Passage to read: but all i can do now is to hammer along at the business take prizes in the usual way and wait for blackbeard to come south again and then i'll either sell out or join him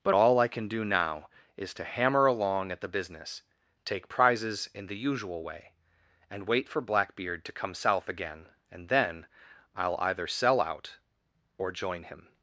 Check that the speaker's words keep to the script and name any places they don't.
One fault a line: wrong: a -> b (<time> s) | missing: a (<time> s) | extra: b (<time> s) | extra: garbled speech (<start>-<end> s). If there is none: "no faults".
no faults